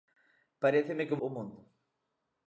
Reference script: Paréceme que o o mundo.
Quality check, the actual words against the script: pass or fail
pass